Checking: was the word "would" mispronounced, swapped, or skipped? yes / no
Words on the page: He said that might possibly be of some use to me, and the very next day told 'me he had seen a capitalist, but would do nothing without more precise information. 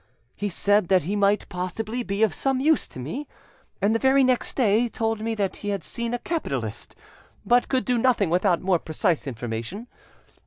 yes